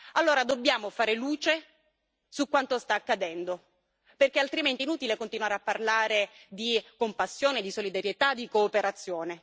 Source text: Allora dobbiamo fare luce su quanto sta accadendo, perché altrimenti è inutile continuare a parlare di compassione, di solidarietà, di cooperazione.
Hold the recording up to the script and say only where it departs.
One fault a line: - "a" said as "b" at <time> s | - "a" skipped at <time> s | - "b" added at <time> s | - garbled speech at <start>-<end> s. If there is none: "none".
none